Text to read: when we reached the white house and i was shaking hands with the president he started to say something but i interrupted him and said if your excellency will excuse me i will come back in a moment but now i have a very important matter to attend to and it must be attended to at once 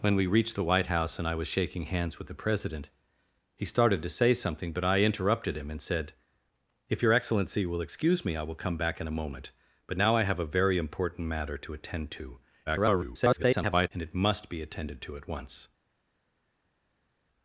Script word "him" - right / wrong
right